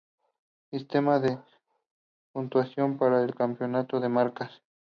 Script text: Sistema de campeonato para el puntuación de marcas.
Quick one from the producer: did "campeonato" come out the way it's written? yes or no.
no